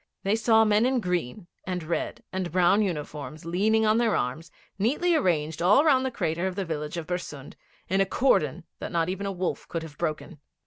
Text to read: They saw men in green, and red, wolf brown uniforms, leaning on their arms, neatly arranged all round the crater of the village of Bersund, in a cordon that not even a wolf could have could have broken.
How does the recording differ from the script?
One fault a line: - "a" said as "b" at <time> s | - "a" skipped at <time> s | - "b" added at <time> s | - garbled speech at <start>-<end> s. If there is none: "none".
- "wolf" said as "and" at 2.3 s
- "could have" skipped at 10.0 s